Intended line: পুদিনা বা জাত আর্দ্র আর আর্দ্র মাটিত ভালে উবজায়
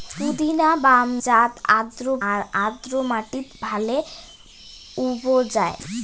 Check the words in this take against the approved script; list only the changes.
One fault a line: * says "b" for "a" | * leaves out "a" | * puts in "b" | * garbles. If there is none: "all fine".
all fine